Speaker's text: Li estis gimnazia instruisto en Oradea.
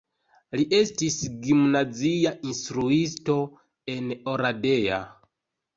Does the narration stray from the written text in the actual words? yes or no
no